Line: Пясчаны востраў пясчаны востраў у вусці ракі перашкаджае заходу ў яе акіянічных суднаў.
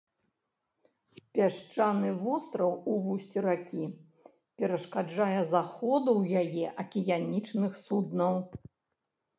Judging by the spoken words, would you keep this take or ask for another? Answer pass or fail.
fail